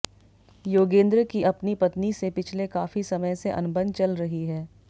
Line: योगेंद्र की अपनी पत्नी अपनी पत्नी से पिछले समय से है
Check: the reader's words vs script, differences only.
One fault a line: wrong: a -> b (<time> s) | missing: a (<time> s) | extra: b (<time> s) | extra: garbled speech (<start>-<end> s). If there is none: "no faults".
missing: अपनी पत्नी (2.1 s)
extra: काफी (2.7 s)
extra: अनबन चल रही (3.5 s)